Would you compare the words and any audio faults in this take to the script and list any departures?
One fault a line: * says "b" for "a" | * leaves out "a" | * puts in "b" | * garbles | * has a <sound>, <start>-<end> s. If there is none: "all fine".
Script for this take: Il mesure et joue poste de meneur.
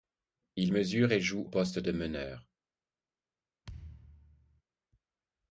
* has a thud, 3.6-4.6 s